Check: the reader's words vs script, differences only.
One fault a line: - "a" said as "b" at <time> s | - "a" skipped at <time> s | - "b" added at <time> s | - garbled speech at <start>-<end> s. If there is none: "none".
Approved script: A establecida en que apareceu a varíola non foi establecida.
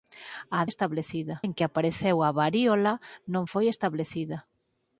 none